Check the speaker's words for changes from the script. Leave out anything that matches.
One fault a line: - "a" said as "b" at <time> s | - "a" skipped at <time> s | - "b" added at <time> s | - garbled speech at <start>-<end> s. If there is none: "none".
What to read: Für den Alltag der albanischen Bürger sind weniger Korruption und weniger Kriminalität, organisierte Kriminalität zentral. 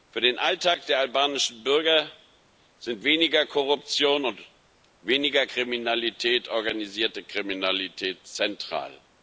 none